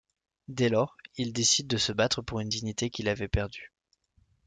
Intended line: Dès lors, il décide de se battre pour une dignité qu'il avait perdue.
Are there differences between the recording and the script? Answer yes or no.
no